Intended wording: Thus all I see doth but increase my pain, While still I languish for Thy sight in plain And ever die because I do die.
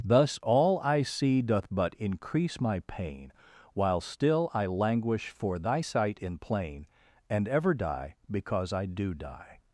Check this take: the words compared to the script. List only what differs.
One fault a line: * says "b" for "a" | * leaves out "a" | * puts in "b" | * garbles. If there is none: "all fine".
all fine